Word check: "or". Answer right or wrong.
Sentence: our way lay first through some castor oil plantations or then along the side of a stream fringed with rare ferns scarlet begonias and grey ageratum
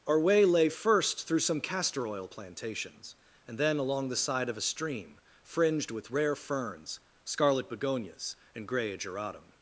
wrong